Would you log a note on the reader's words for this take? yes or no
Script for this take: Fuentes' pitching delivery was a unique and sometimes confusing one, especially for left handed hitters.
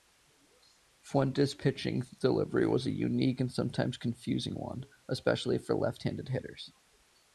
no